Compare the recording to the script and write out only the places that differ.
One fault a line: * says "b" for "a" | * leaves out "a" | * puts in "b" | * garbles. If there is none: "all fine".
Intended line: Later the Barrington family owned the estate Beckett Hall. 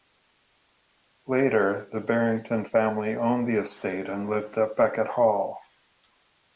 * puts in "and lived at"